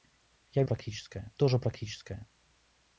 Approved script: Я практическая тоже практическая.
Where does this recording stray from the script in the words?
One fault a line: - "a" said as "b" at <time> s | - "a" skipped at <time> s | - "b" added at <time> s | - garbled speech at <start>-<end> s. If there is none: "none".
none